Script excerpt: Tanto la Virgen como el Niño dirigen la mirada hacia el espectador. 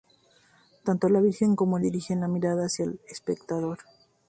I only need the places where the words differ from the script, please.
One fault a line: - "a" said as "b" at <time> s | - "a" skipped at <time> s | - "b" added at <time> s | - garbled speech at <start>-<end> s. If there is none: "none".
- "Niño" skipped at 1.9 s